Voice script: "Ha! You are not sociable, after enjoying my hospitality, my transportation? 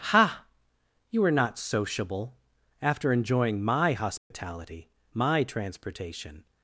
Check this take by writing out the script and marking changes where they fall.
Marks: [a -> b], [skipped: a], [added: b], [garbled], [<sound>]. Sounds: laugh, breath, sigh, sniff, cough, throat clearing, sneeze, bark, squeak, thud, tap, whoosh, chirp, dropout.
"Ha! You are not sociable, after enjoying my hospitality, [dropout] my transportation?